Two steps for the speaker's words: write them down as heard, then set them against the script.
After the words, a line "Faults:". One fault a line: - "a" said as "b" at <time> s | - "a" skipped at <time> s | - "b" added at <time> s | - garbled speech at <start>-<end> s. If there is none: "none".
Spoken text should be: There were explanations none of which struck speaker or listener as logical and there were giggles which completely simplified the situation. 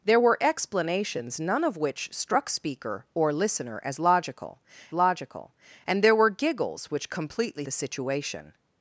There were explanations none of which struck speaker or listener as logical logical and there were giggles which completely the situation.
Faults:
- "logical" added at 4.9 s
- "simplified" skipped at 7.6 s